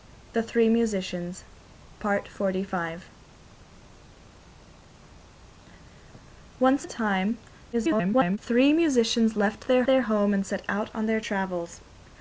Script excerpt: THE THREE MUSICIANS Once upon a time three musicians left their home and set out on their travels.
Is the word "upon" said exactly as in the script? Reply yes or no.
no